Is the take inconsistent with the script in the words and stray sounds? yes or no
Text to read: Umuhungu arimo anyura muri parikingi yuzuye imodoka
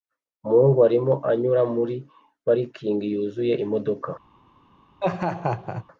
yes